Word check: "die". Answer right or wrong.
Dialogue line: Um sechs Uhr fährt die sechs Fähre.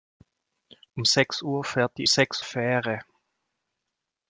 right